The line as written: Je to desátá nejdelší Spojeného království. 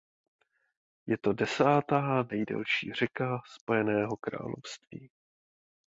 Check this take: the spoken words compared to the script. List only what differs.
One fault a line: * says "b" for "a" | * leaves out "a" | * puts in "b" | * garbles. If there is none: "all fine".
* puts in "řeka"